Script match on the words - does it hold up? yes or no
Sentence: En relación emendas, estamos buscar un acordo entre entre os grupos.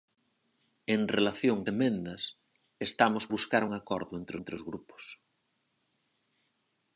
yes